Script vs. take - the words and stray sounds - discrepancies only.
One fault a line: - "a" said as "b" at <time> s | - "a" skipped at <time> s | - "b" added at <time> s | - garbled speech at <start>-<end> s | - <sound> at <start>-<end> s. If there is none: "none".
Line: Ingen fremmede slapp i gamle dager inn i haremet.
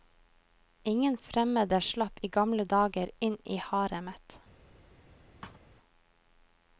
- thud at 5.4-5.7 s